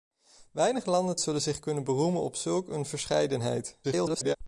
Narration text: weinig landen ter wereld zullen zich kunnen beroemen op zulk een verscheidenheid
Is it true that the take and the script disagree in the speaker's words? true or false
true